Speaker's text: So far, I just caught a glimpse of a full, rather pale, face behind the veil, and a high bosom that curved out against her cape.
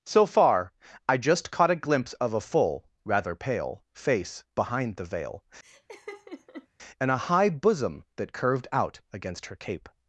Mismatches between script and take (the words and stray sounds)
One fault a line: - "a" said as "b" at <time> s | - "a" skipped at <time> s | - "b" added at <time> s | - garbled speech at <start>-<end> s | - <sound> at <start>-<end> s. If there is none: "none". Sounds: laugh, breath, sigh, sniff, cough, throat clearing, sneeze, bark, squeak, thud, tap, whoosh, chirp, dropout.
- laugh at 5.6-6.7 s